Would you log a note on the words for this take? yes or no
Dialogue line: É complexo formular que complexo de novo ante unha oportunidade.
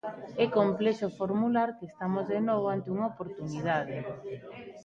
yes